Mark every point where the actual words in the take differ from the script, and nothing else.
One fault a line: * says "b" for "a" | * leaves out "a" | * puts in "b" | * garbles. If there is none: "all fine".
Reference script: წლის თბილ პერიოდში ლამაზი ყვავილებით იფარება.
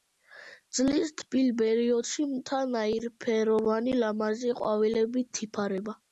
* puts in "მთა ნაირფეროვანი"